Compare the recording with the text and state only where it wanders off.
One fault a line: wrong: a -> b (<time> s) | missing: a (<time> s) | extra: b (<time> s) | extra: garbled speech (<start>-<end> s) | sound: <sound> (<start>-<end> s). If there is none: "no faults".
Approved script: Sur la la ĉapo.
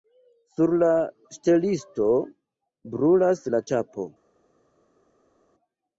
extra: ŝtelisto brulas (1.4 s)